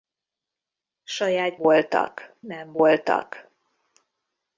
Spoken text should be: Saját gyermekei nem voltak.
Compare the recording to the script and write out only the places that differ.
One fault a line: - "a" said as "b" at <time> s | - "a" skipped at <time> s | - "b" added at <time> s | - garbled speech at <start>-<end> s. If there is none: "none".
- "gyermekei" said as "voltak" at 1.6 s